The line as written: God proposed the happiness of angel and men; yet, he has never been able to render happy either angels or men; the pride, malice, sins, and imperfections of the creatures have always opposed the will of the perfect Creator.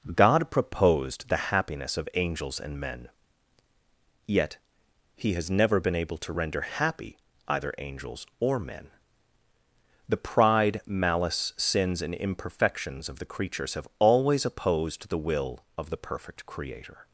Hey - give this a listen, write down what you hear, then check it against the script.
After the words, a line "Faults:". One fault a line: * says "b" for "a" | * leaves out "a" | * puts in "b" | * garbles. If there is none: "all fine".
God proposed the happiness of angels and men; yet, he has never been able to render happy either angels or men; the pride, malice, sins, and imperfections of the creatures have always opposed the will of the perfect Creator.
Faults:
* says "angels" for "angel"